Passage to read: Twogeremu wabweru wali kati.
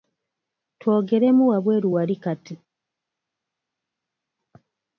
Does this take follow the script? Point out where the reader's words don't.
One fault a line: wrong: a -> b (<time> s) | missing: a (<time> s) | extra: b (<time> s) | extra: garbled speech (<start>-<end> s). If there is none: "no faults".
no faults